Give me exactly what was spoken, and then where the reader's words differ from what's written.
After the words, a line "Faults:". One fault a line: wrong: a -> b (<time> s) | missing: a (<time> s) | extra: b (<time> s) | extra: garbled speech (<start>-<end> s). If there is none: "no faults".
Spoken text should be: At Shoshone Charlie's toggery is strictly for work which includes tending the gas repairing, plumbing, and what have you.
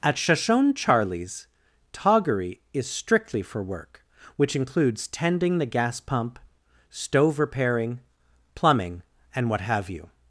At Shoshone Charlie's toggery is strictly for work which includes tending the gas pump, stove repairing, plumbing, and what have you.
Faults:
extra: pump stove (6.0 s)